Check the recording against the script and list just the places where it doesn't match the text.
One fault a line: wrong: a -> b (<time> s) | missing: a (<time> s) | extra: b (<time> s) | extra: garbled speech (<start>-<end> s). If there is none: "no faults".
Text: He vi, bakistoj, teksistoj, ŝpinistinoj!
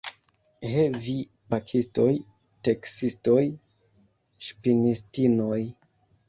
no faults